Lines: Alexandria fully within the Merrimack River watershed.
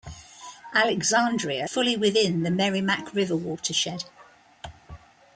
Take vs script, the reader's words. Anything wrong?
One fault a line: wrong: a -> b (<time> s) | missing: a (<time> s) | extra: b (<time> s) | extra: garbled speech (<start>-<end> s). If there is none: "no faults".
no faults